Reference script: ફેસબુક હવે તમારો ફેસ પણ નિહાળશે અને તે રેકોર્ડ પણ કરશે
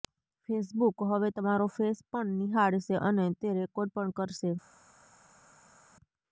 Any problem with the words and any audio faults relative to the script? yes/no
no